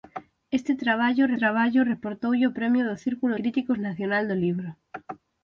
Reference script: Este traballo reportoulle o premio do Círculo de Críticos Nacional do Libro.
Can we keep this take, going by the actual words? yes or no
no